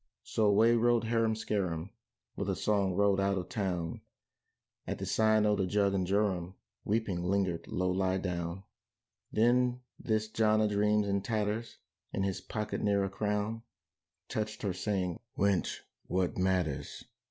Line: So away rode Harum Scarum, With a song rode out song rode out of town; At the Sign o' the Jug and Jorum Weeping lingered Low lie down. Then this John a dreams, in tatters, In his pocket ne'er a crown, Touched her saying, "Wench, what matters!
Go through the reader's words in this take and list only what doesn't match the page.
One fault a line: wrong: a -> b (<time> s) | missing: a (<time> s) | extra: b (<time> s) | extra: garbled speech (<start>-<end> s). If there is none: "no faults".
missing: song rode out (3.4 s)